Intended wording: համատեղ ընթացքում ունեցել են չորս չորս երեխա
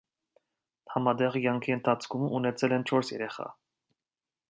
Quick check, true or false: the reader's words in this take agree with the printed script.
false